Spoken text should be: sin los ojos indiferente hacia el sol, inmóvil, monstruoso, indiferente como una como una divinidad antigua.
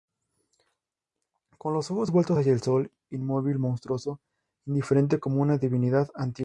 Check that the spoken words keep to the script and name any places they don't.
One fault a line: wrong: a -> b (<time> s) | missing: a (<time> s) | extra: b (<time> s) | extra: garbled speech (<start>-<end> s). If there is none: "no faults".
wrong: sin -> con (1.6 s)
wrong: indiferente -> vueltos (2.1 s)
missing: como una (5.6 s)